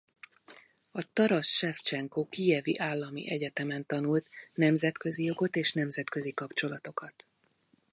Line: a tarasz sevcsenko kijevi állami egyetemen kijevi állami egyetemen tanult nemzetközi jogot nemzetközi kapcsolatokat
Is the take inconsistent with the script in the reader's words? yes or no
yes